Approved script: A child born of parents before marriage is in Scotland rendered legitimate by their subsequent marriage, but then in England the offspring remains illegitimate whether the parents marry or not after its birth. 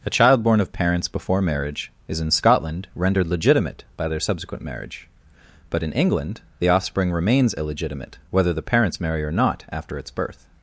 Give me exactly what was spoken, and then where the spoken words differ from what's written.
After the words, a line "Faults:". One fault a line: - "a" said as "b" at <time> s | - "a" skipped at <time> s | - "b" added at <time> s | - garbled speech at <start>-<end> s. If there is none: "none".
A child born of parents before marriage is in Scotland rendered legitimate by their subsequent marriage, but in England the offspring remains illegitimate whether the parents marry or not after its birth.
Faults:
- "then" skipped at 5.8 s